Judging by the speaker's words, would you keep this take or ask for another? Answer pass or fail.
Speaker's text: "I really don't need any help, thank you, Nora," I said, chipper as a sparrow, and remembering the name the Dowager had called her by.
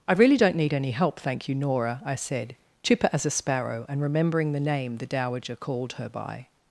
fail